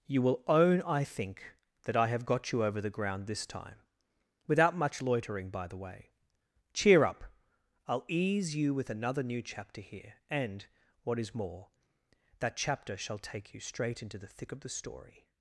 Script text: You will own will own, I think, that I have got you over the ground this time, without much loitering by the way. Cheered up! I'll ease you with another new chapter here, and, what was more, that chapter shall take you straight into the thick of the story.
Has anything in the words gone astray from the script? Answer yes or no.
yes